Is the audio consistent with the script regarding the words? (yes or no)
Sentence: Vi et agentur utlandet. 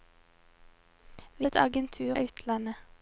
yes